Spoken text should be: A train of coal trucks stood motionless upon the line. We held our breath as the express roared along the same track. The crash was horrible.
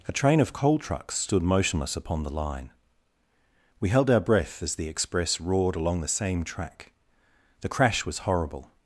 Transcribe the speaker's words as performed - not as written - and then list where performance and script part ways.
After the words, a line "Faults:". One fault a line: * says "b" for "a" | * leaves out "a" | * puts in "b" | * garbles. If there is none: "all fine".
A train of coal trucks stood motionless upon the line. We held our breath as the express roared along the same track. The crash was horrible.
Faults:
all fine